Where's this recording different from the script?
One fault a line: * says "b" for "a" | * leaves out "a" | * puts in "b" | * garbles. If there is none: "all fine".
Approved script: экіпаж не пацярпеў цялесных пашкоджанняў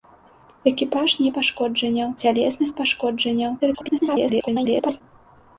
* says "пашкоджанняў" for "пацярпеў"
* garbles